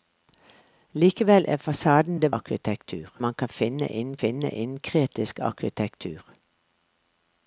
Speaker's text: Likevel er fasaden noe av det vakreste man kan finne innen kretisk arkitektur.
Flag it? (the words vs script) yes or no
yes